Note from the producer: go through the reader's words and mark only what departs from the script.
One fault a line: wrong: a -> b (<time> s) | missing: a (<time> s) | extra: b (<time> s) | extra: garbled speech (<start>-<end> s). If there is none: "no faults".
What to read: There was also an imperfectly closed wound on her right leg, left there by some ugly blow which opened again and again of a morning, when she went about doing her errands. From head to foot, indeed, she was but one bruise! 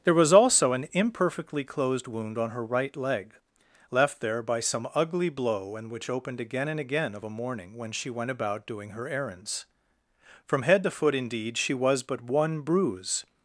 extra: and (5.8 s)